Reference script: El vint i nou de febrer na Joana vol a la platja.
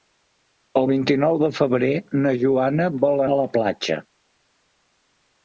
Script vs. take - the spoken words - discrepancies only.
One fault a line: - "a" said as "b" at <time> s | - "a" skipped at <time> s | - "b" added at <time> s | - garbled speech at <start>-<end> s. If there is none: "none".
none